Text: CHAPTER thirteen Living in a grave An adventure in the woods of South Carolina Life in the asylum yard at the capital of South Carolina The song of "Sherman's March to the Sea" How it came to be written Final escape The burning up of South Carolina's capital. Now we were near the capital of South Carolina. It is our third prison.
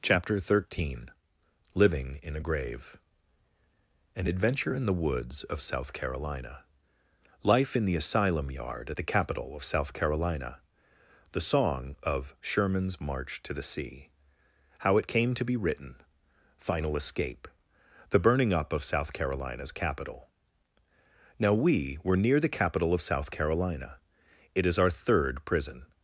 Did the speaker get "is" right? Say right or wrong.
right